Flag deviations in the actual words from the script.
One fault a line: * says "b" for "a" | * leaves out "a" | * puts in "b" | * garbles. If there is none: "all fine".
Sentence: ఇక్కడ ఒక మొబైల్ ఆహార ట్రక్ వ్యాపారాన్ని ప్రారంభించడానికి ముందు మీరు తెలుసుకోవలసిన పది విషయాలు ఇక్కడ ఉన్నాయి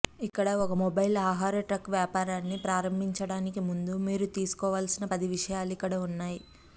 all fine